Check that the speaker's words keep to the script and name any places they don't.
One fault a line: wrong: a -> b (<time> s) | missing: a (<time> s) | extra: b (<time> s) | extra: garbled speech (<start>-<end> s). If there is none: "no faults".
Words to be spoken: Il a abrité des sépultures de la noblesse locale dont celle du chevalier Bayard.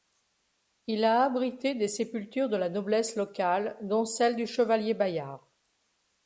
no faults